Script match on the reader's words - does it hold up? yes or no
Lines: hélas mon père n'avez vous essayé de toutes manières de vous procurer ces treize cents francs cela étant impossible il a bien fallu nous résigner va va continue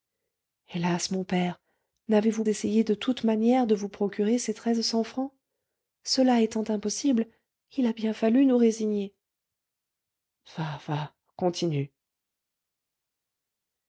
yes